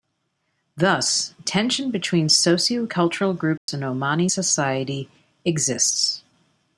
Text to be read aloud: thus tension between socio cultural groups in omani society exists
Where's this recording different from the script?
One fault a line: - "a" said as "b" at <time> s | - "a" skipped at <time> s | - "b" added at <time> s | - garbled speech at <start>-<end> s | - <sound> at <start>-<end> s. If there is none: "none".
- dropout at 3.6-3.7 s